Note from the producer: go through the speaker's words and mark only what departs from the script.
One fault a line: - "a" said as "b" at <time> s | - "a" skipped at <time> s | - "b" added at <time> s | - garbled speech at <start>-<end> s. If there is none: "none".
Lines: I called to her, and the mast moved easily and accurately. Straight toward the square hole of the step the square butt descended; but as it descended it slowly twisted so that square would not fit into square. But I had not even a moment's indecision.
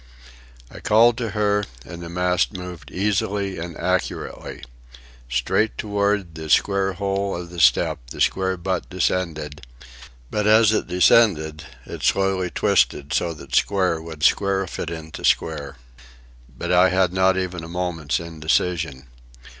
- "not" said as "square" at 14.2 s